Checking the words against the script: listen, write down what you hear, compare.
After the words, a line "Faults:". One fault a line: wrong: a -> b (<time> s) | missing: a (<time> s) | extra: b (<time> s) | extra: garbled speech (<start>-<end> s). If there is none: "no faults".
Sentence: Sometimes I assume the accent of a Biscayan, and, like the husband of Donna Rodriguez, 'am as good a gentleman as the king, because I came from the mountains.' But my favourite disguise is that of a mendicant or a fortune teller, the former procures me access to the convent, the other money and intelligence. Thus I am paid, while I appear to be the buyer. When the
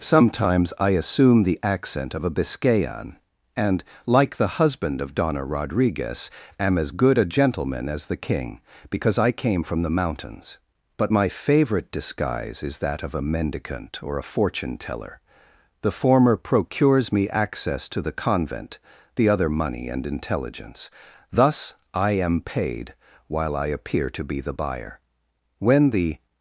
Sometimes I assume the accent of a Biscayan, and, like the husband of Donna Rodriguez, 'am as good a gentleman as the king, because I came from the mountains.' But my favourite disguise is that of a mendicant or a fortune teller, the former procures me access to the convent, the other money and intelligence. Thus I am paid, while I appear to be the buyer. When the
Faults:
no faults